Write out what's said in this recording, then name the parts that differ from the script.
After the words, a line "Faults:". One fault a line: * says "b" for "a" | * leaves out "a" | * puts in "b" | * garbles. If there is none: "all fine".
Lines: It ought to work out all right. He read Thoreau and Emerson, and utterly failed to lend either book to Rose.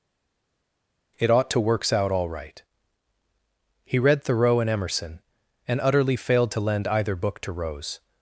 It ought to works out all right. He read Thoreau and Emerson, and utterly failed to lend either book to Rose.
Faults:
* says "works" for "work"